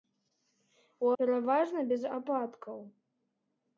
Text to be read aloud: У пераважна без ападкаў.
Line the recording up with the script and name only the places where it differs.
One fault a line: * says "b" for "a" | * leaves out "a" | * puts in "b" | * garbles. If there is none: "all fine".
all fine